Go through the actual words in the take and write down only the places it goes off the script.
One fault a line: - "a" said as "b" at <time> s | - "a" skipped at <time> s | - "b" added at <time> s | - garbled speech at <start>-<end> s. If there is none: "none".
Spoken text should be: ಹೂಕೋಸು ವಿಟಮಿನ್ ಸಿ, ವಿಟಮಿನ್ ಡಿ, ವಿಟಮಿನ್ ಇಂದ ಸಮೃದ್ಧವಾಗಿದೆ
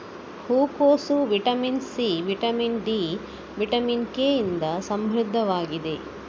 - "ಕೆ" added at 4.1 s